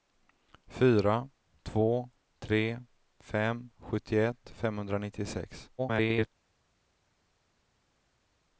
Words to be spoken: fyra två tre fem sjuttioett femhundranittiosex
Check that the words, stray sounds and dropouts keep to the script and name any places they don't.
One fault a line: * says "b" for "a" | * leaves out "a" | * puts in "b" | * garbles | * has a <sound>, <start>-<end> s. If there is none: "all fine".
* garbles